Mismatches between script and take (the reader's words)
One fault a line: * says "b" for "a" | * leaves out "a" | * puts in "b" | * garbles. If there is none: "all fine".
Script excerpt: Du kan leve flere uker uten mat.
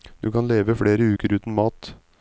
all fine